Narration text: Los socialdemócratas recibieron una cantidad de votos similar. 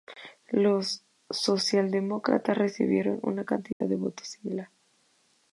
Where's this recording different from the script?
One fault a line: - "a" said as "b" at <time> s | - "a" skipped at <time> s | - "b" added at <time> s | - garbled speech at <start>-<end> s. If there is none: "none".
none